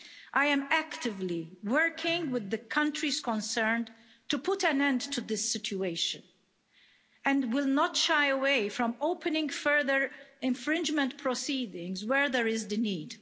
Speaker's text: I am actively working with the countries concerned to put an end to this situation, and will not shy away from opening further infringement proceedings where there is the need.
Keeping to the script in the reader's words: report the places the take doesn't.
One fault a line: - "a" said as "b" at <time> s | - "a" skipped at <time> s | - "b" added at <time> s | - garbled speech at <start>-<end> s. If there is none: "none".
none